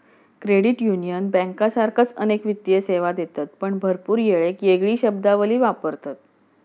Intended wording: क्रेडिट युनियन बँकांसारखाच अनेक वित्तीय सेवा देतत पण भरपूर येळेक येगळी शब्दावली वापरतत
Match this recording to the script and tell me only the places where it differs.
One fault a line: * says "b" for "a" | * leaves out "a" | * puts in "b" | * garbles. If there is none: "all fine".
all fine